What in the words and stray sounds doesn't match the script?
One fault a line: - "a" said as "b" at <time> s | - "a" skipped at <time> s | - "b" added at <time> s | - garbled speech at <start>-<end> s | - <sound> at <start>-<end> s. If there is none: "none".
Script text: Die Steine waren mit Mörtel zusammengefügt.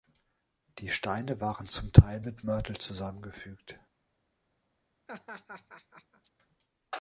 - "zum Teil" added at 1.7 s
- laugh at 5.1-6.3 s